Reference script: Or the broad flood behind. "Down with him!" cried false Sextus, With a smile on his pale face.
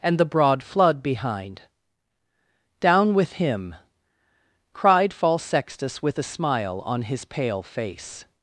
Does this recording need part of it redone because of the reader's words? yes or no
yes